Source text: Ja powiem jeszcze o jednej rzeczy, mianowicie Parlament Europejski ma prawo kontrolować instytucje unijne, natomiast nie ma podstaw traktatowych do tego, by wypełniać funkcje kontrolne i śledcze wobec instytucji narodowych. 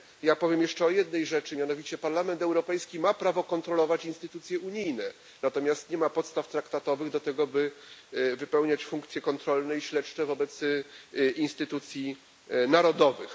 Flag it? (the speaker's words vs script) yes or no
no